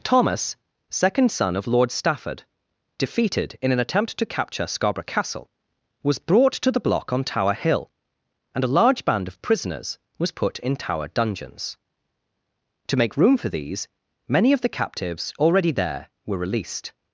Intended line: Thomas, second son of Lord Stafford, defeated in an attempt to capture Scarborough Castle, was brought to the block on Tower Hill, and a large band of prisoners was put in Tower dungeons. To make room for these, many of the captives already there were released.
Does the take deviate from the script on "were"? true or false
false